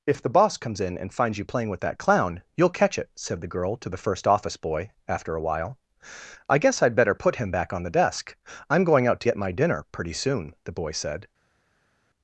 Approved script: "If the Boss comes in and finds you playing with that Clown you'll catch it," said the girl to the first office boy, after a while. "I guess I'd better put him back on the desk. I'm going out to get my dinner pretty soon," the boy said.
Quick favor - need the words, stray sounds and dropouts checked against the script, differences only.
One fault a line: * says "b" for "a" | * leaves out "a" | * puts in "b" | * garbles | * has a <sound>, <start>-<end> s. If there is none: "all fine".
all fine